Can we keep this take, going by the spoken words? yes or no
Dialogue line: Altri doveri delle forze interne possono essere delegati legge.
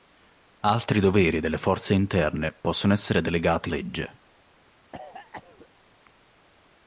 yes